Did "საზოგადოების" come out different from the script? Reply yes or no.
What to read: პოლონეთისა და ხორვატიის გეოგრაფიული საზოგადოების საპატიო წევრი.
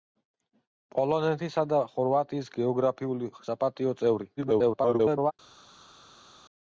yes